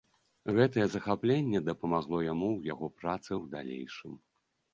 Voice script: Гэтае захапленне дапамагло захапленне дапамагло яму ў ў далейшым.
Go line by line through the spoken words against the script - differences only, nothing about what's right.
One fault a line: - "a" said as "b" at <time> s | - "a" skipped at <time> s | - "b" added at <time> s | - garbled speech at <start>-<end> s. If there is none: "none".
- "захапленне дапамагло яму ў" said as "яму ў яго працы" at 2.3 s